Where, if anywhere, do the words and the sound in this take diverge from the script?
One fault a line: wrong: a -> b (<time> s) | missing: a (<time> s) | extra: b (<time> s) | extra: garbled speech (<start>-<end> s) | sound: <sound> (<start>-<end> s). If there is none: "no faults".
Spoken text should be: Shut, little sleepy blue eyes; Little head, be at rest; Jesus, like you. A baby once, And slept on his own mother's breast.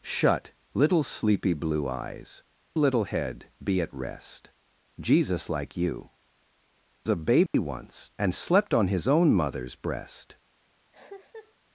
sound: dropout (7.5-7.5 s)
sound: cough (10.9-11.5 s)